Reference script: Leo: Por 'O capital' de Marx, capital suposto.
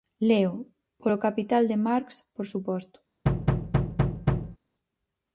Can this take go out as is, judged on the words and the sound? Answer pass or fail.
fail